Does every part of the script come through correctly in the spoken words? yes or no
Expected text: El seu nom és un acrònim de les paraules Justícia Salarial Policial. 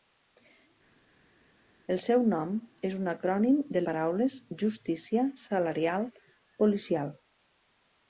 no